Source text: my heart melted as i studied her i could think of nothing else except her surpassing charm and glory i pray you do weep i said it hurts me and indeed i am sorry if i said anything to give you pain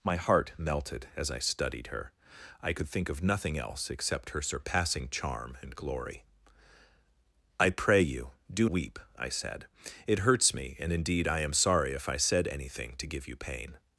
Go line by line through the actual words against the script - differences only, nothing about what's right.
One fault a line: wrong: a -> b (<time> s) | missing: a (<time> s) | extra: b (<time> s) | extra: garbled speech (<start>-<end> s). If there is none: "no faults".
no faults